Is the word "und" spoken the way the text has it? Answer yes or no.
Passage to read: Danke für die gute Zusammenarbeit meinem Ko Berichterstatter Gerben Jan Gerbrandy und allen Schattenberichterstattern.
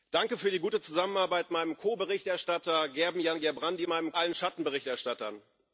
no